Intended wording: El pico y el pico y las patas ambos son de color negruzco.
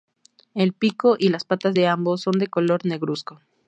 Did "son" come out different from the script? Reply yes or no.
no